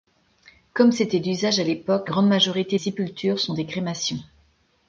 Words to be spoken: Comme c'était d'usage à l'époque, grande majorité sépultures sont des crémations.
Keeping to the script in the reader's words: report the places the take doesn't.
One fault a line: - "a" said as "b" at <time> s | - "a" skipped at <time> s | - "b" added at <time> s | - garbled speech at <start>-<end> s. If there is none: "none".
none